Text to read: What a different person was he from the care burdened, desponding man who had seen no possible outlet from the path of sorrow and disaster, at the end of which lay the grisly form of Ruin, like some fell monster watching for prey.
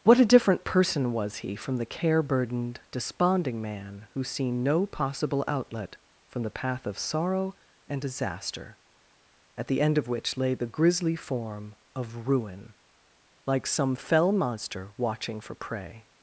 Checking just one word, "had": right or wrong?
wrong